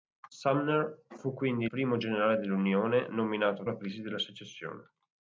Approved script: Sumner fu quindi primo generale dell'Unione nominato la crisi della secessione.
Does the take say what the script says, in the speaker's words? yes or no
yes